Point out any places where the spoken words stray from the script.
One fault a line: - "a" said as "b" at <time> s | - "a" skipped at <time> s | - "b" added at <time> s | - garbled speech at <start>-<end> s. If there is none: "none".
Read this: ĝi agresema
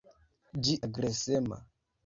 none